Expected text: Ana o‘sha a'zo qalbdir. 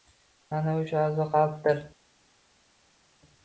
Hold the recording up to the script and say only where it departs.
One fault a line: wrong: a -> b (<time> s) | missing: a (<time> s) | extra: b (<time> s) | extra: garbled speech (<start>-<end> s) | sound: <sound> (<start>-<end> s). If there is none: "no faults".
no faults